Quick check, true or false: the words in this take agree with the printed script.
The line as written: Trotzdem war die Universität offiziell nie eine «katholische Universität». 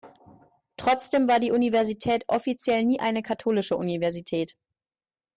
true